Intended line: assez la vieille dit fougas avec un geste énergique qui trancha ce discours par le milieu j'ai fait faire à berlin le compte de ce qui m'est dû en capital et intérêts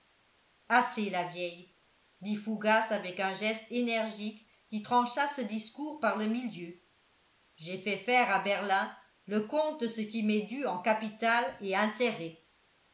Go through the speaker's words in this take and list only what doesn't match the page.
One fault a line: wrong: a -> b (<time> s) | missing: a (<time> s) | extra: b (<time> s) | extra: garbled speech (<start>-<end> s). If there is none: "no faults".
no faults